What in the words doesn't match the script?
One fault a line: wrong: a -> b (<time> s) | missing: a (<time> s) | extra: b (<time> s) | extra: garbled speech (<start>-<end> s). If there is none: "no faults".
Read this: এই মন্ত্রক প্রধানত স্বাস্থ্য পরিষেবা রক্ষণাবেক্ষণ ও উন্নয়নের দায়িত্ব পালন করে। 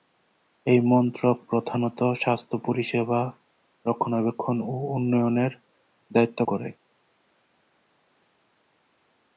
missing: পালন (6.4 s)